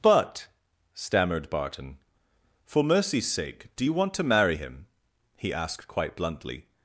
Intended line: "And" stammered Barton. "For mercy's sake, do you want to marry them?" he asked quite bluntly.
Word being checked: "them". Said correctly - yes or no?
no